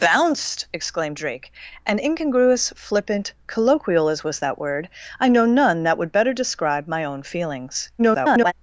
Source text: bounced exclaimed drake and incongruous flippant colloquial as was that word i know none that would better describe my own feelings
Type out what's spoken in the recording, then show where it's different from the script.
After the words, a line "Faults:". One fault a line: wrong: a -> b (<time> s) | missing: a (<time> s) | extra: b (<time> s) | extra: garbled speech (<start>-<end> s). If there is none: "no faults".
bounced exclaimed drake and incongruous flippant colloquial as was that word i know none that would better describe my own feelings [garbled]
Faults:
extra: garbled speech (8.0-8.5 s)